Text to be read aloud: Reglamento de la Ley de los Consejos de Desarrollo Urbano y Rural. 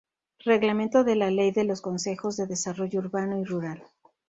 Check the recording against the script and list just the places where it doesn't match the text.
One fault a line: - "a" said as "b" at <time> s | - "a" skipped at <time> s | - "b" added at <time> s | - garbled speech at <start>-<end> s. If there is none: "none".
none